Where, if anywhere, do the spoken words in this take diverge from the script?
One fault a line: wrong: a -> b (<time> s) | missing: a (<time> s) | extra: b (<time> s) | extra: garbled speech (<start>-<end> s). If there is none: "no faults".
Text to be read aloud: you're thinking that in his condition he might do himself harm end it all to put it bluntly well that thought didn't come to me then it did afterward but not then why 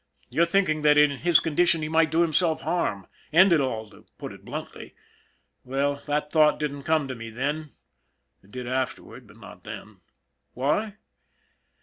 no faults